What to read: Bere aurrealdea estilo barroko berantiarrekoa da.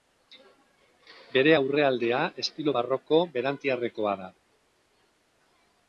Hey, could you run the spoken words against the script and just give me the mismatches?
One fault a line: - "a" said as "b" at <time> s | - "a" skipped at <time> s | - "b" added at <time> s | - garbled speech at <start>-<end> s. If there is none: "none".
none